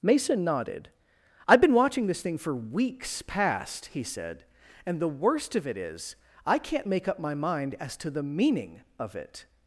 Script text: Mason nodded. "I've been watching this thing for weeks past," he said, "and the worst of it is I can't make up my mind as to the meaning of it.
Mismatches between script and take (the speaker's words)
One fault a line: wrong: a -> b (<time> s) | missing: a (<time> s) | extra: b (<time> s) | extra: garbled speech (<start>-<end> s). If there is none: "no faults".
no faults